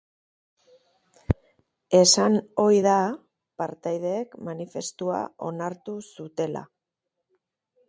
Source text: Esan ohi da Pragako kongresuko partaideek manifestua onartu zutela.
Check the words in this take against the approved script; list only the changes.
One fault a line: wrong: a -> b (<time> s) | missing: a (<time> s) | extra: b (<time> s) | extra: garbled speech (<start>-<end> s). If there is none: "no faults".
missing: Pragako kongresuko (2.9 s)